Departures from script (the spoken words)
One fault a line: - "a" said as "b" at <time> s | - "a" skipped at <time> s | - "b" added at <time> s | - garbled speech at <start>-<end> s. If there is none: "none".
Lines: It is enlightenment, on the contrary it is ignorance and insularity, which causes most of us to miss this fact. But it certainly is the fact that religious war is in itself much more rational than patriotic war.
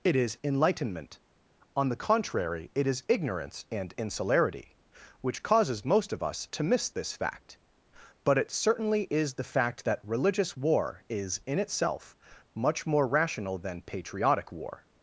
none